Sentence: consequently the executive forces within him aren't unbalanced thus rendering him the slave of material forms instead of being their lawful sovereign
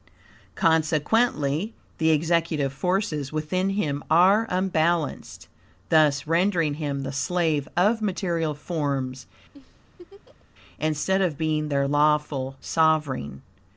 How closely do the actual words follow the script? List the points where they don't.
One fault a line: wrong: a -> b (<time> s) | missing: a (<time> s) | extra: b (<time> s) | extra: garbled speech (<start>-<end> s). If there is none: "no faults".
wrong: aren't -> are (4.1 s)